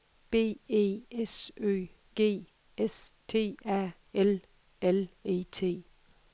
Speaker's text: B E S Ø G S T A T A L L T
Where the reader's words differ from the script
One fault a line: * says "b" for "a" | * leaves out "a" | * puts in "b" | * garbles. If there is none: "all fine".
* says "L" for "T A"
* says "E" for "L"